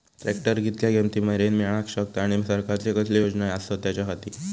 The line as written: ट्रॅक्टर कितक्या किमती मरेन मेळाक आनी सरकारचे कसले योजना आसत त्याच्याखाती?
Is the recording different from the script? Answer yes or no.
yes